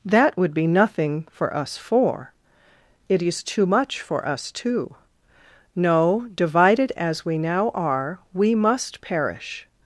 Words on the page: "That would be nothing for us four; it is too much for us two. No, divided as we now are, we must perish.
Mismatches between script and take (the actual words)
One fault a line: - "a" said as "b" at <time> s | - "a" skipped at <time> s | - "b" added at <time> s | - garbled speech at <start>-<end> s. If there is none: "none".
none